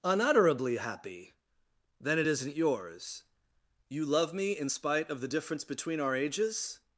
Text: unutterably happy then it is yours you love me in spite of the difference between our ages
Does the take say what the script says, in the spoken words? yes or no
no